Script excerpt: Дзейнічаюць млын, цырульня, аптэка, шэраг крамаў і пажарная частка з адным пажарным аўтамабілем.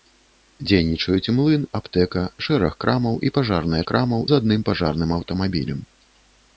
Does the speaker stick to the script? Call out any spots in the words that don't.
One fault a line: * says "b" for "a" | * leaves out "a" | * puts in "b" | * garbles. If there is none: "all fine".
* leaves out "цырульня"
* says "крамаў" for "частка"